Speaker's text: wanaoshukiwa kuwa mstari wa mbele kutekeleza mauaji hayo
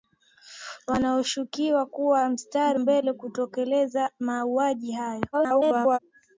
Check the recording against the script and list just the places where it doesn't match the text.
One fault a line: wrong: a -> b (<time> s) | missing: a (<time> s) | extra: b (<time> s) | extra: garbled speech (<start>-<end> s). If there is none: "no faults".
missing: wa (2.8 s)
extra: garbled speech (5.3-6.0 s)